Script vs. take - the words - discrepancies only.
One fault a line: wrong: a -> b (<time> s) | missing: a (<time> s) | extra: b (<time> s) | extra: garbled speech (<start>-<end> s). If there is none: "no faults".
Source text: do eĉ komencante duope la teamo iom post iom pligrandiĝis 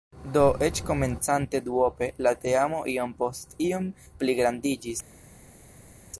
no faults